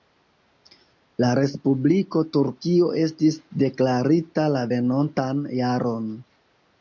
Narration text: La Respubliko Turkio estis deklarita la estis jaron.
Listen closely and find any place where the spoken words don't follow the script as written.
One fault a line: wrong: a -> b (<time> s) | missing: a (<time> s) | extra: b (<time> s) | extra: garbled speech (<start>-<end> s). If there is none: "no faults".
wrong: estis -> venontan (4.7 s)